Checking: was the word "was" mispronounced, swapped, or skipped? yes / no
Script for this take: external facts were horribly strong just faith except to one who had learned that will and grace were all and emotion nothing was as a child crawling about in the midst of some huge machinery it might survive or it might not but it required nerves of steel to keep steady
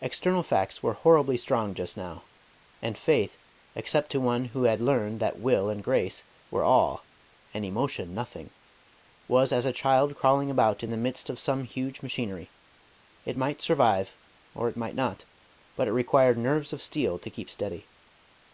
no